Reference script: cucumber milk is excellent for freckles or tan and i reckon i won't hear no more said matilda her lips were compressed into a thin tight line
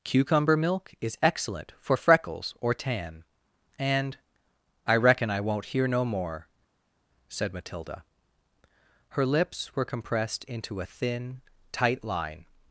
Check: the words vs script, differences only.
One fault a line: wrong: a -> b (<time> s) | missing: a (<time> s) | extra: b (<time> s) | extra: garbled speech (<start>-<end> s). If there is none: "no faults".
no faults